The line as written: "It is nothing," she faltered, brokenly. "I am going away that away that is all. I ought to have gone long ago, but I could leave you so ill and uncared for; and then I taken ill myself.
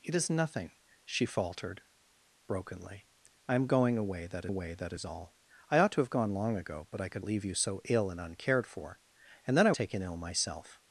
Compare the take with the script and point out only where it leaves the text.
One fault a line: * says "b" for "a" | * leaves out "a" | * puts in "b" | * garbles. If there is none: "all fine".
all fine